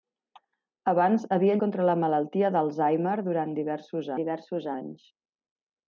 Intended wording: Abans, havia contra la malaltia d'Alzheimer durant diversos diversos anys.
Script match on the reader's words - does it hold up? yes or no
yes